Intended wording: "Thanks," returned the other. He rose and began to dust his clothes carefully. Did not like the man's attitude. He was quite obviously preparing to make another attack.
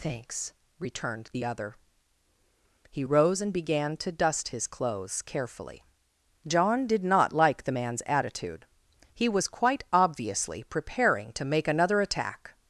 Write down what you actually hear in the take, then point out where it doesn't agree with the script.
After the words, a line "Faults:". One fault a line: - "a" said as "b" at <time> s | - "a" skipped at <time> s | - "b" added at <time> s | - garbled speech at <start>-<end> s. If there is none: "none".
"Thanks," returned the other. He rose and began to dust his clothes carefully. John did not like the man's attitude. He was quite obviously preparing to make another attack.
Faults:
- "John" added at 6.5 s